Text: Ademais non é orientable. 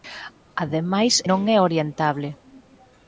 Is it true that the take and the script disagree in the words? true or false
false